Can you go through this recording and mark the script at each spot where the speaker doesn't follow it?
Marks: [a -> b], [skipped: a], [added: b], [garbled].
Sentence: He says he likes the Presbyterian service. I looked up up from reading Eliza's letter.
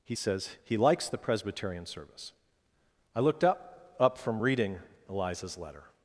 He says he likes the Presbyterian service. I looked up up from reading Eliza's letter.